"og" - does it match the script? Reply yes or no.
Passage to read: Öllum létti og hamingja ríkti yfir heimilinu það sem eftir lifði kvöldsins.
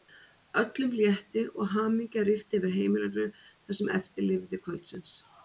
yes